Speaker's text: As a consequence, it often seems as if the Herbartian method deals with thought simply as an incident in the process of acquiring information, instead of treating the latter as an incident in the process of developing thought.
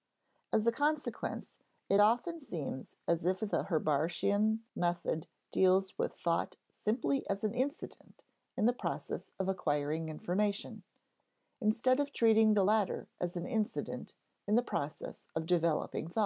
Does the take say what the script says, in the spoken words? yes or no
yes